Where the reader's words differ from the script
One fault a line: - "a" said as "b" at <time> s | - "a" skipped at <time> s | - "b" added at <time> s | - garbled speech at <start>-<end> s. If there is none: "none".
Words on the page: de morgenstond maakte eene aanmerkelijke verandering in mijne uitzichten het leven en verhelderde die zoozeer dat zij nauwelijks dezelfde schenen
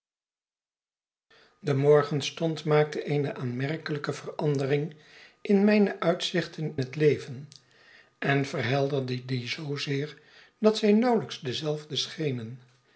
none